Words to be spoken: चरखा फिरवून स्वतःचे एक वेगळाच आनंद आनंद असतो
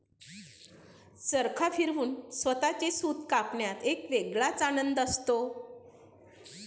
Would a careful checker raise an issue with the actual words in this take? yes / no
yes